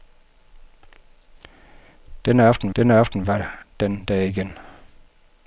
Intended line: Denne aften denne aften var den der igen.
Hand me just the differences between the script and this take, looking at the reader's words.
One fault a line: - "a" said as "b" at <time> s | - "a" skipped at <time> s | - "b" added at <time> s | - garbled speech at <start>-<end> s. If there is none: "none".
none